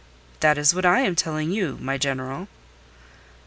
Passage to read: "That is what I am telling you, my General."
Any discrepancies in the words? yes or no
no